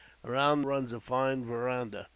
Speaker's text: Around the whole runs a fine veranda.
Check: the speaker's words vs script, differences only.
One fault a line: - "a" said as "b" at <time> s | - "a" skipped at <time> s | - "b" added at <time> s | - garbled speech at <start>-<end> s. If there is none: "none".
- "the whole" skipped at 0.6 s